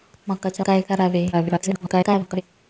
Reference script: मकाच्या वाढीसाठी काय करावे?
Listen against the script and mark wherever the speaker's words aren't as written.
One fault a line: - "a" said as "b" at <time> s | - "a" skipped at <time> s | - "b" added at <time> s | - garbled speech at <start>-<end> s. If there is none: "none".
- "वाढीसाठी" skipped at 0.7 s
- garbled speech at 1.3-2.4 s